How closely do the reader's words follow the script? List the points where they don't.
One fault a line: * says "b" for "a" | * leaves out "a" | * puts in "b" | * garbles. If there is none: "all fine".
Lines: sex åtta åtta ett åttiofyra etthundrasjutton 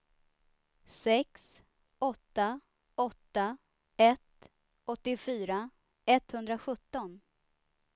all fine